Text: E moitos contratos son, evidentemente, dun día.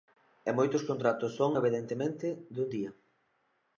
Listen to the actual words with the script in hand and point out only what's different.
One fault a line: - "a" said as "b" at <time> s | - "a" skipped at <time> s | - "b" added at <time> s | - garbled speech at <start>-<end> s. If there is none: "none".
none